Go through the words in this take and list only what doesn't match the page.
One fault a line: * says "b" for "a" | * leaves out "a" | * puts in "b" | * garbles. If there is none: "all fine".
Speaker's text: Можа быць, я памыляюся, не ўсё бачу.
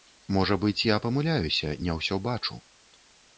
all fine